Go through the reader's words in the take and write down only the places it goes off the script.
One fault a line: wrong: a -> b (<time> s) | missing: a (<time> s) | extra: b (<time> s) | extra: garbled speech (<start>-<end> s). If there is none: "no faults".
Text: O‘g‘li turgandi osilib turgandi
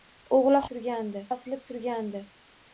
no faults